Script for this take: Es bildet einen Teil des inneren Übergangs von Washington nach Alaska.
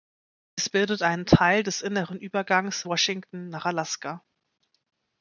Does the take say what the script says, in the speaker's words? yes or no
no